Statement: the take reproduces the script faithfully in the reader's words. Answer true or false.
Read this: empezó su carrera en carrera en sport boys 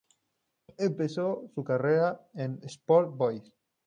false